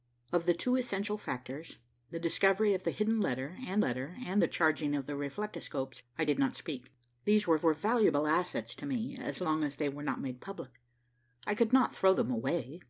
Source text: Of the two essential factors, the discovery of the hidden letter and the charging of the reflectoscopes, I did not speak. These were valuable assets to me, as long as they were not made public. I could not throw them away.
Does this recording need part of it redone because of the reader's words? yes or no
yes